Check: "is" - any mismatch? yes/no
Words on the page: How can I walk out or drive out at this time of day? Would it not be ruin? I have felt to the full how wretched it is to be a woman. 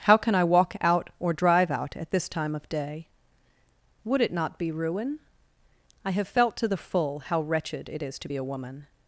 no